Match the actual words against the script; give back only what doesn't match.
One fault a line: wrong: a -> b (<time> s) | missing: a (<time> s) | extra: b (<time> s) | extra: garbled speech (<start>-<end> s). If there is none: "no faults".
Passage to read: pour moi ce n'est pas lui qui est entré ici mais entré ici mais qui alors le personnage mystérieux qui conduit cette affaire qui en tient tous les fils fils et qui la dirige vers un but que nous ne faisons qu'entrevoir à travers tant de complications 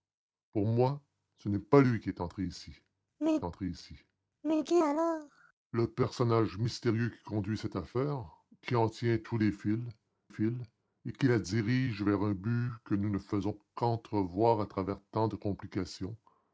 no faults